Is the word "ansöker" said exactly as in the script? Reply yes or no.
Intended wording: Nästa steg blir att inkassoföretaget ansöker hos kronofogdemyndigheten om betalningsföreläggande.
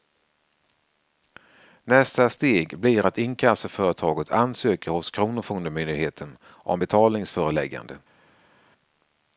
yes